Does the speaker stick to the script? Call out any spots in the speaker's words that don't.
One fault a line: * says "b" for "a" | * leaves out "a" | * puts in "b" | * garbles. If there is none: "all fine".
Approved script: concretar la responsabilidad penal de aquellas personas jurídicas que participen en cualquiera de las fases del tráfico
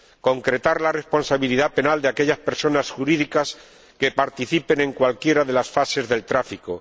all fine